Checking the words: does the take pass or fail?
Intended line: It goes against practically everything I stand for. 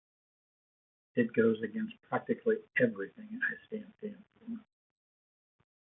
fail